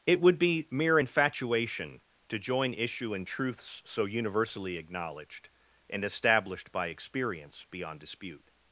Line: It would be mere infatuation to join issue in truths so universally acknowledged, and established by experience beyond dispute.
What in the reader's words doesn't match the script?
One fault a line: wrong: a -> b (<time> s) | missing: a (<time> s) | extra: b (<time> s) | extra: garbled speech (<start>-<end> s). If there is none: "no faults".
no faults